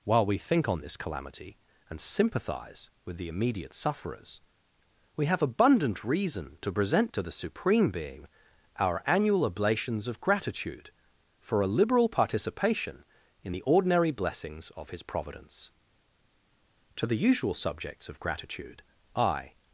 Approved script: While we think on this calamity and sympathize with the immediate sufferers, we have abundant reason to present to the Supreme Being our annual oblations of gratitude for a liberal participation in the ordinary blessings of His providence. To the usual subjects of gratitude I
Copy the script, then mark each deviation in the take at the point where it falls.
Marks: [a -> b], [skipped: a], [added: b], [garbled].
While we think on this calamity and sympathize with the immediate sufferers, we have abundant reason to present to the Supreme Being our annual oblations of gratitude for a liberal participation in the ordinary blessings of His providence. To the usual subjects of gratitude I